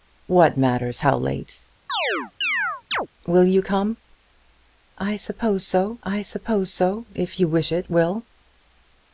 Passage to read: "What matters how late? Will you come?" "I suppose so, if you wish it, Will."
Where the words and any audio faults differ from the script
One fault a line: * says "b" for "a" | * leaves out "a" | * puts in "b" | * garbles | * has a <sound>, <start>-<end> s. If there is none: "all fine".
* has a chirp, 1.9-3.1 s
* puts in "I suppose so"